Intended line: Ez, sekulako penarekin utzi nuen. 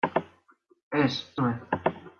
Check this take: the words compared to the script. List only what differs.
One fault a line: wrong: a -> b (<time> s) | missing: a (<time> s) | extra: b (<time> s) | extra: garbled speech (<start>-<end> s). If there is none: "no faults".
missing: sekulako penarekin utzi (1.1 s)